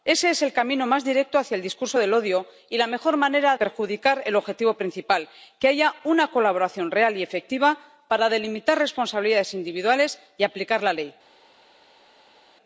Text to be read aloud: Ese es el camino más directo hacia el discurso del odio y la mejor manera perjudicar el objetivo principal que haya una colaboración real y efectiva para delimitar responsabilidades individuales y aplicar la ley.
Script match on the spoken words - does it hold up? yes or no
yes